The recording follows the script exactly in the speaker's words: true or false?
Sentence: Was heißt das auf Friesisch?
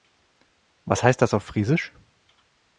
true